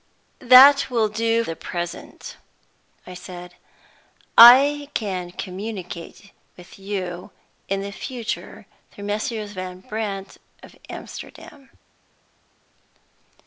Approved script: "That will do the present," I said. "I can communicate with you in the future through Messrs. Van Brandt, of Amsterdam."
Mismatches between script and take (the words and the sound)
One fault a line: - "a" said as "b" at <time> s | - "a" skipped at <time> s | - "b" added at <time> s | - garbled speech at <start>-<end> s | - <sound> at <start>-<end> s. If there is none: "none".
none